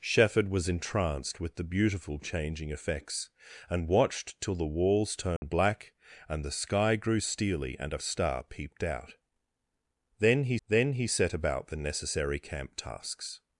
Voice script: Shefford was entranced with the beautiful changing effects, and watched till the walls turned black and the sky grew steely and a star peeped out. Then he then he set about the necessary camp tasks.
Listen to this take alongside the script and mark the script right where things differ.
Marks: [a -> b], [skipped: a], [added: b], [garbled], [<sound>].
Shefford was entranced with the beautiful changing effects, and watched till the walls turned [dropout] black and the sky grew steely and a star peeped out. Then he then he set about the necessary camp tasks.